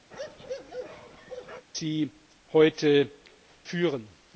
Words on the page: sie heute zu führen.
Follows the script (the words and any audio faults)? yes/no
no